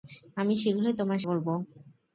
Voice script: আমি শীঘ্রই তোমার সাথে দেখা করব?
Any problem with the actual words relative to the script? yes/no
yes